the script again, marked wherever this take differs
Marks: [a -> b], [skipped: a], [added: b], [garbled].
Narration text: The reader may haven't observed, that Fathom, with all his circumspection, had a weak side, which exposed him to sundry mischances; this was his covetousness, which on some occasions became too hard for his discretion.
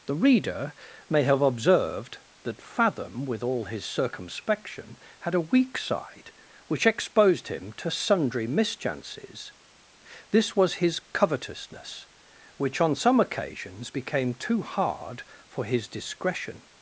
The reader may [haven't -> have] observed, that Fathom, with all his circumspection, had a weak side, which exposed him to sundry mischances; this was his covetousness, which on some occasions became too hard for his discretion.